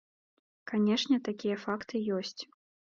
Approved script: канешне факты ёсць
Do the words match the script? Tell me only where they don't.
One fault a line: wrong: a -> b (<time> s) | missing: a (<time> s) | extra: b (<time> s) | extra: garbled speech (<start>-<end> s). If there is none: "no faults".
extra: такія (1.3 s)